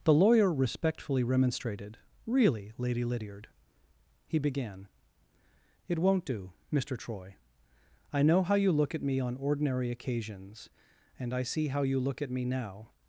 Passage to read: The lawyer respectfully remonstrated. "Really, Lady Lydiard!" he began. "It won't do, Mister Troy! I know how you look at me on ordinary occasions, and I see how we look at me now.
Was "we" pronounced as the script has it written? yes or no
no